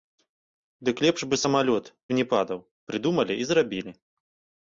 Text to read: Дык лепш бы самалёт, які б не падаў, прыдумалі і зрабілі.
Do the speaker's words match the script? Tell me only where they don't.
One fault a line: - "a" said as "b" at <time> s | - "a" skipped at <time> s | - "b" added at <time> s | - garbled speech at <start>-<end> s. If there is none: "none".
- "які" skipped at 1.8 s